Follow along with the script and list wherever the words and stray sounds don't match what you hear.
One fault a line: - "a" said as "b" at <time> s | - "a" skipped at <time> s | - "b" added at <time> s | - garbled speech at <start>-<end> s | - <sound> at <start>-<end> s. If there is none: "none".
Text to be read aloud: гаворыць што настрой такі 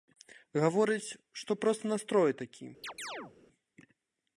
- "проста" added at 1.6 s
- chirp at 2.8-3.3 s